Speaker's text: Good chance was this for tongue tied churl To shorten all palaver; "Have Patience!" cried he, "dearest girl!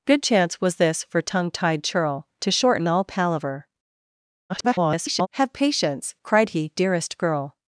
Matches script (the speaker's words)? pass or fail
fail